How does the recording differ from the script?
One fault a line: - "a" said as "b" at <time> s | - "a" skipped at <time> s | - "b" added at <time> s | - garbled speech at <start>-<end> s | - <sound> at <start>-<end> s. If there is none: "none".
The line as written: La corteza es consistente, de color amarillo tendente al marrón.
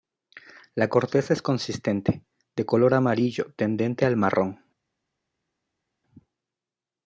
none